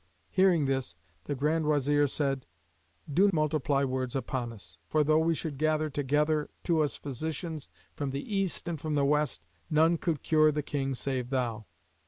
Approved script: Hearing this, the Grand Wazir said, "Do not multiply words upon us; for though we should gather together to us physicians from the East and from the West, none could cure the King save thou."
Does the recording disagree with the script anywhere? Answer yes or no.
yes